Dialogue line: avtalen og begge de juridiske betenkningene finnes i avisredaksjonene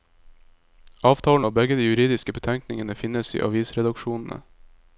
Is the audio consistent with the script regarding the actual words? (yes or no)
yes